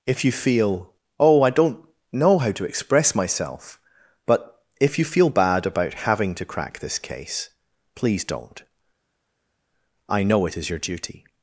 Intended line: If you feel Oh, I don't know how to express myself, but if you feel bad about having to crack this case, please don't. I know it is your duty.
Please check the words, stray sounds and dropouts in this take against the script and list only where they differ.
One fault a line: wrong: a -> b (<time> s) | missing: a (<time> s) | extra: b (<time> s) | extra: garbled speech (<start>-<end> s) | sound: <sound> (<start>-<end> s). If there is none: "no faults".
no faults